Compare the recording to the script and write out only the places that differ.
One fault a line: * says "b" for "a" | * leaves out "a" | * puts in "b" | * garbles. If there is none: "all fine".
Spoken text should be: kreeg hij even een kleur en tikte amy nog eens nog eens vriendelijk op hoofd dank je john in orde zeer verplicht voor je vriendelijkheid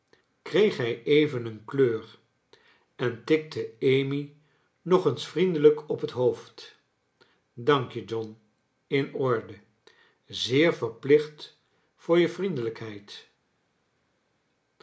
* leaves out "nog eens"
* puts in "het"